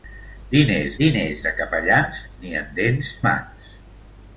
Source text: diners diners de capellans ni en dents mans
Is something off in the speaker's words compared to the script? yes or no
no